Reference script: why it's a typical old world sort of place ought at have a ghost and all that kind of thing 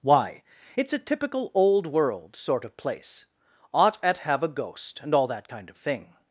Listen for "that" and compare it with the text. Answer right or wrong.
right